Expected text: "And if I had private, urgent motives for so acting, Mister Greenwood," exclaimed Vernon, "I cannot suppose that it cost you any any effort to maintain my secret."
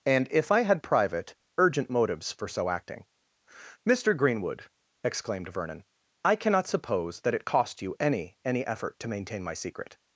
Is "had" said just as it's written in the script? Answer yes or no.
yes